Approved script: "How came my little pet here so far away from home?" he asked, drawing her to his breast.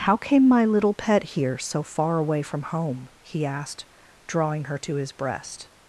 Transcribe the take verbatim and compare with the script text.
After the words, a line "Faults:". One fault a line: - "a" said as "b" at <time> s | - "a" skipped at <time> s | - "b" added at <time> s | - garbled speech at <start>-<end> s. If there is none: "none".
"How came my little pet here so far away from home?" he asked, drawing her to his breast.
Faults:
none